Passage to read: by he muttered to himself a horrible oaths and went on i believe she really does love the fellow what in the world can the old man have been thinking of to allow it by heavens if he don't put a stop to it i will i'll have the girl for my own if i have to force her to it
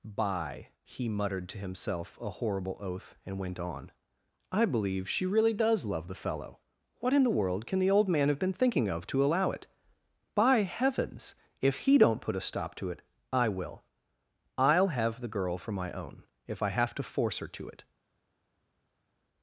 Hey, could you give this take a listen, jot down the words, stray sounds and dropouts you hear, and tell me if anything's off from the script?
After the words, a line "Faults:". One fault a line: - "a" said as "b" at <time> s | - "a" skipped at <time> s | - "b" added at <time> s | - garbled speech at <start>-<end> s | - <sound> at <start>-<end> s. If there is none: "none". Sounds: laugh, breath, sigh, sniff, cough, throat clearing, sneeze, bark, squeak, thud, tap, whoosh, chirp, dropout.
by he muttered to himself a horrible oath and went on i believe she really does love the fellow what in the world can the old man have been thinking of to allow it by heavens if he don't put a stop to it i will i'll have the girl for my own if i have to force her to it
Faults:
- "oaths" said as "oath" at 2.8 s